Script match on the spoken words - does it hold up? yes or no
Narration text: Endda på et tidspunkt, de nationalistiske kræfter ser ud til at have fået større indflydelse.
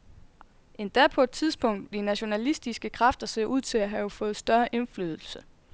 yes